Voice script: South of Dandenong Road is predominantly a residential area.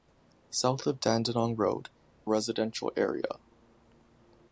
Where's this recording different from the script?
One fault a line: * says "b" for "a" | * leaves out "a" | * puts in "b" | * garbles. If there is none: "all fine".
* leaves out "is predominantly a"